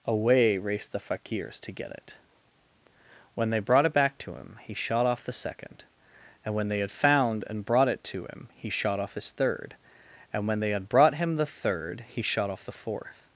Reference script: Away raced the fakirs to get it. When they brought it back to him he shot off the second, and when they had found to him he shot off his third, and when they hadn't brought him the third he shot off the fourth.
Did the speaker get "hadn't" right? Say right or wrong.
wrong